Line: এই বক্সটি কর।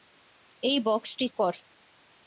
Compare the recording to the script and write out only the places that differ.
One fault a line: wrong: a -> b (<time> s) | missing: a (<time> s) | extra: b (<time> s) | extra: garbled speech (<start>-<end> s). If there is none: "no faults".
no faults